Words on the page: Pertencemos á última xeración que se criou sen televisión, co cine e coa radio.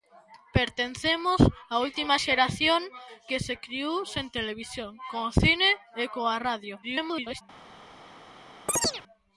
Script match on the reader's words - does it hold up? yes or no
no